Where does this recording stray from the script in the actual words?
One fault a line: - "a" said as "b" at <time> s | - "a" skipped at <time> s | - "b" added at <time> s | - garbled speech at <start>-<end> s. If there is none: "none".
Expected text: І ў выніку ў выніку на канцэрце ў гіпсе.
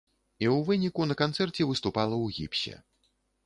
- "ў выніку" skipped at 1.1 s
- "выступала" added at 1.8 s